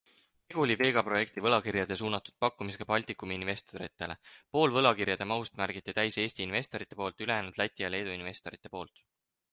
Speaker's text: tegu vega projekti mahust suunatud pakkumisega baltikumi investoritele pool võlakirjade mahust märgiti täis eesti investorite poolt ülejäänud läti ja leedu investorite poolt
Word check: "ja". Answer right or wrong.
right